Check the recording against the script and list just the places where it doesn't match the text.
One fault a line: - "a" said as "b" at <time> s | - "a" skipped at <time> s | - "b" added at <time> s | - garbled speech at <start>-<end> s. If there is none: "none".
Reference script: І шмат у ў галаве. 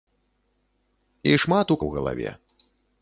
none